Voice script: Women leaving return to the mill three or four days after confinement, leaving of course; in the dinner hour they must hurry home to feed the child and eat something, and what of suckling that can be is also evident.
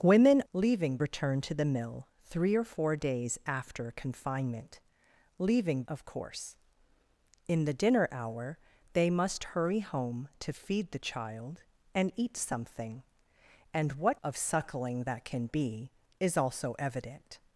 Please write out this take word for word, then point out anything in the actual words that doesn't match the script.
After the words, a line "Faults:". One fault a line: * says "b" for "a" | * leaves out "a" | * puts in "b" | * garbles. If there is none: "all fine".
Women leaving return to the mill three or four days after confinement, leaving of course; in the dinner hour they must hurry home to feed the child and eat something, and what of suckling that can be is also evident.
Faults:
all fine